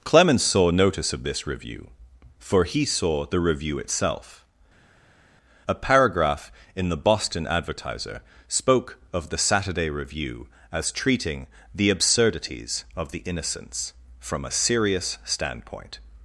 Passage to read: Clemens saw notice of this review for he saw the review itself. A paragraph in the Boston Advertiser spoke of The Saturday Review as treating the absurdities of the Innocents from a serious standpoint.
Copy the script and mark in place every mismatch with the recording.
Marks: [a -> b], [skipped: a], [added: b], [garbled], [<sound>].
Clemens saw notice of this review for he saw the review itself. A paragraph in the Boston Advertiser spoke of The Saturday Review as treating the absurdities of the Innocents from a serious standpoint.